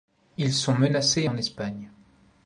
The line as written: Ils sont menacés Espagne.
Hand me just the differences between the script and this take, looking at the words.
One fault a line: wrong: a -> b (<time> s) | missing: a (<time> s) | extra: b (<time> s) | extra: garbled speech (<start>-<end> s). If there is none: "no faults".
extra: en (1.2 s)